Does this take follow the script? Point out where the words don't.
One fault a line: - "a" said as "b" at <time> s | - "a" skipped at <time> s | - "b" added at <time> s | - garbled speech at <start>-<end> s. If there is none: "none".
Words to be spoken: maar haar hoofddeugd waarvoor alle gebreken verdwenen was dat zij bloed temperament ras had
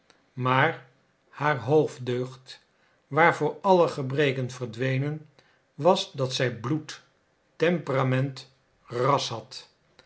none